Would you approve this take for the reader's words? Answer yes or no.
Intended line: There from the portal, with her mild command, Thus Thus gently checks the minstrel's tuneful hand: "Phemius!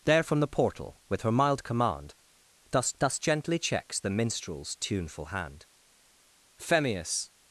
yes